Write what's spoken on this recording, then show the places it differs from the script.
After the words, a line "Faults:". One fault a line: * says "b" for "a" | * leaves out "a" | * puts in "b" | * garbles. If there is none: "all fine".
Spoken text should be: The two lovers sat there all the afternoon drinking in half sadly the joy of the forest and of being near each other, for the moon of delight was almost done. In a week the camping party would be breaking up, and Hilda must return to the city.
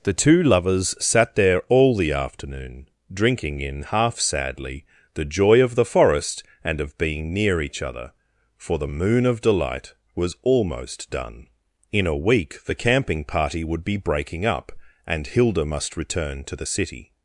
The two lovers sat there all the afternoon drinking in half sadly the joy of the forest and of being near each other, for the moon of delight was almost done. In a week the camping party would be breaking up, and Hilda must return to the city.
Faults:
all fine